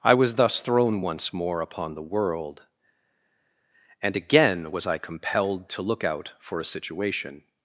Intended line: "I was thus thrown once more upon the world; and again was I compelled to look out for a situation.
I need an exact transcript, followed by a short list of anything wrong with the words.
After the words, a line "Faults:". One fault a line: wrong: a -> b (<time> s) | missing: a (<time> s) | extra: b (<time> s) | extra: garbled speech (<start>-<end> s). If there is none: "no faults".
"I was thus thrown once more upon the world; and again was I compelled to look out for a situation.
Faults:
no faults